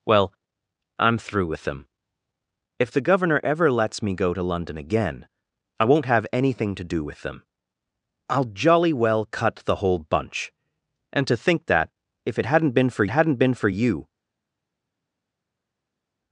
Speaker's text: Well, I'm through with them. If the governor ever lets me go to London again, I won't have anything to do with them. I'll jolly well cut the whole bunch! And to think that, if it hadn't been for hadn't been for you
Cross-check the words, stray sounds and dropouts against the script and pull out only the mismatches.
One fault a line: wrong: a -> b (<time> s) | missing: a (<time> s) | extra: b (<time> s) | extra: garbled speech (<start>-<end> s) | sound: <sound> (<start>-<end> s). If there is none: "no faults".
no faults